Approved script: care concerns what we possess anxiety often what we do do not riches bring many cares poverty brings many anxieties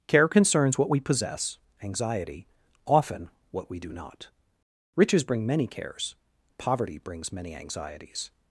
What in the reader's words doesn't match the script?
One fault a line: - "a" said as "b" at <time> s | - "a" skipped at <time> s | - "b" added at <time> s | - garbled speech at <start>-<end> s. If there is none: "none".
- "do" skipped at 3.9 s